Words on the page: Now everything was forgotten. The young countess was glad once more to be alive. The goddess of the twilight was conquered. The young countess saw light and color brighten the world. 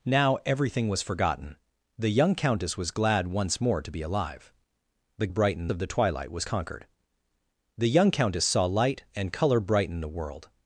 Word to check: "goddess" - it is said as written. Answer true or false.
false